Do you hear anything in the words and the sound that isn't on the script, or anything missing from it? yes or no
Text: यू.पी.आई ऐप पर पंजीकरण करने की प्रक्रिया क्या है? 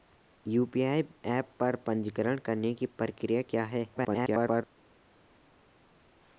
yes